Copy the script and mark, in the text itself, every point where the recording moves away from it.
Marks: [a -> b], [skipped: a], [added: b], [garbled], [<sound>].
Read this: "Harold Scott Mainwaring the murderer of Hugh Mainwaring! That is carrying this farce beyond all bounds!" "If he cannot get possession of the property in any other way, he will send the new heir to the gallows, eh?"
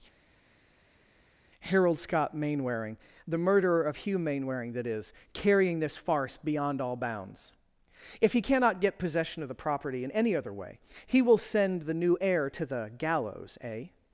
"Harold Scott Mainwaring the murderer of Hugh Mainwaring! That is carrying this farce beyond all bounds!" "If he cannot get possession of the property in any other way, he will send the new heir to the gallows, eh?"